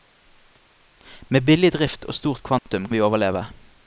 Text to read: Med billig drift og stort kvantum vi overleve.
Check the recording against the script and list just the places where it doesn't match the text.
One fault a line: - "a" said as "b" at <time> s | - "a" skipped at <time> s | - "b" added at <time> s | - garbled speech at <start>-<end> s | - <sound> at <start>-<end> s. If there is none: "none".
- dropout at 2.6-2.7 s